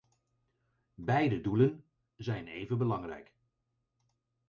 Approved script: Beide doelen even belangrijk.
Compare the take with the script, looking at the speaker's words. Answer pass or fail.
fail